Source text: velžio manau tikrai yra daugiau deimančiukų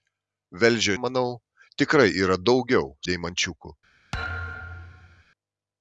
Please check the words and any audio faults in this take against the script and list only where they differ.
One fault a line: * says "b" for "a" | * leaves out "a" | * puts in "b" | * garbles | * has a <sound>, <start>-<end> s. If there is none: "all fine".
* has a thud, 4.1-5.2 s